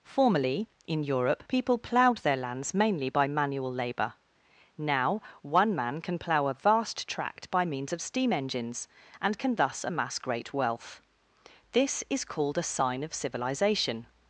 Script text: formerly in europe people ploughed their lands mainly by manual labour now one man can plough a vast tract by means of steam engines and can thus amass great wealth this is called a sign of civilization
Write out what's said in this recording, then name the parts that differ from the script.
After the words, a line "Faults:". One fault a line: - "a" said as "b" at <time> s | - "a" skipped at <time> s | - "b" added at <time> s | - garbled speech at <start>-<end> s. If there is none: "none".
formerly in europe people ploughed their lands mainly by manual labour now one man can plough a vast tract by means of steam engines and can thus amass great wealth this is called a sign of civilization
Faults:
none